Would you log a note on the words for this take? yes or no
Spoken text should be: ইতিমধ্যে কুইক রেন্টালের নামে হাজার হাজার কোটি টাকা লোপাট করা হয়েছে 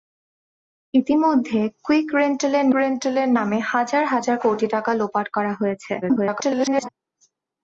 yes